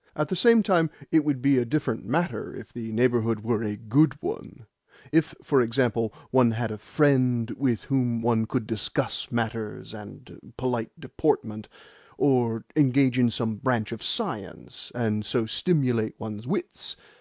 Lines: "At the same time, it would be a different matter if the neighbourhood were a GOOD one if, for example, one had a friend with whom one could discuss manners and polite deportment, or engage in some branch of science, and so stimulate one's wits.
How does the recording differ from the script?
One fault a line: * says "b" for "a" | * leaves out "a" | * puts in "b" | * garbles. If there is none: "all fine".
all fine